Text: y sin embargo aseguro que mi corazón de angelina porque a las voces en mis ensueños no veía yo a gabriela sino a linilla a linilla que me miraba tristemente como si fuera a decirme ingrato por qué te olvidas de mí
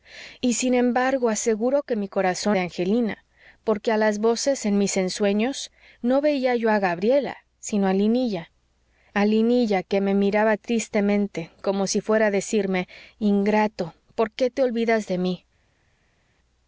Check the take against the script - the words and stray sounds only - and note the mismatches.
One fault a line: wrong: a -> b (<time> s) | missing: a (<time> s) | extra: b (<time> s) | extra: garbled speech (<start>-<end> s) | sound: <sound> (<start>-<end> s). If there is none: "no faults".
no faults